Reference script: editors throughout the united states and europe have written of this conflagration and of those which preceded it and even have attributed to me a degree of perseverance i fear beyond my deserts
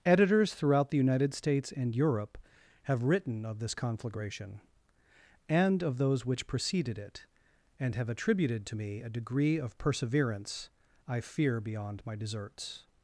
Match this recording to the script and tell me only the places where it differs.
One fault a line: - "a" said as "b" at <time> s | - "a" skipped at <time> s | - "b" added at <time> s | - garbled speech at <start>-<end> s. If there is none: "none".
- "even" skipped at 7.9 s